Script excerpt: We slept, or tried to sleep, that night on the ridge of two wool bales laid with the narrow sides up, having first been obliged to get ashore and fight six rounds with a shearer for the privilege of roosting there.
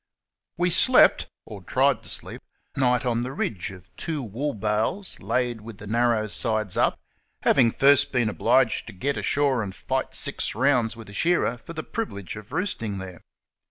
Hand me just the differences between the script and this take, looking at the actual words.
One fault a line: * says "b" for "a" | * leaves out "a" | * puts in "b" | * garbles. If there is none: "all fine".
* leaves out "that"